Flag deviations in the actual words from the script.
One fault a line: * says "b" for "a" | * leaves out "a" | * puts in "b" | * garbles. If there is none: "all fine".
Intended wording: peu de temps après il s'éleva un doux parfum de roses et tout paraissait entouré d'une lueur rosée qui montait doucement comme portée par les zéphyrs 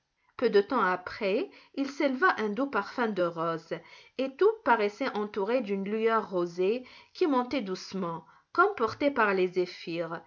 all fine